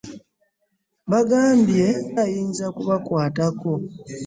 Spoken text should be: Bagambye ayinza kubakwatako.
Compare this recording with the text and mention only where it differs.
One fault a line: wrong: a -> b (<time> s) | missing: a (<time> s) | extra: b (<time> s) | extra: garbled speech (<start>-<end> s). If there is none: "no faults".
no faults